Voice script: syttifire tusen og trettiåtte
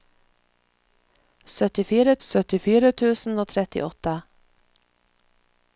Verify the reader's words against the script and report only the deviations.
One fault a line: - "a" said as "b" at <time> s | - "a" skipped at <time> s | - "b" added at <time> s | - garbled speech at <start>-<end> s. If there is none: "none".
- "syttifire" added at 2.3 s